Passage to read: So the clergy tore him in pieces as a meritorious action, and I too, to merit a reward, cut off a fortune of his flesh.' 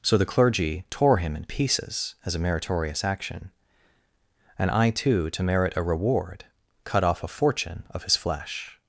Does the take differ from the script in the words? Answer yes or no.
no